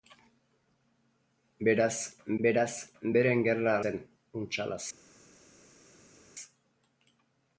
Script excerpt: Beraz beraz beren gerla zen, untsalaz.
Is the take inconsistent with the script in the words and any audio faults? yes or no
no